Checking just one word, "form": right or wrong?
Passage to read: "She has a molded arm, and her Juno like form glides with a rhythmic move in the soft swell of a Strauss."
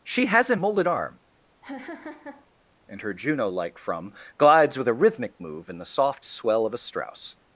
wrong